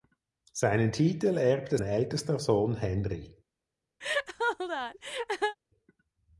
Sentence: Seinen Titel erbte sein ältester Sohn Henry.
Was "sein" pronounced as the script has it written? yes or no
no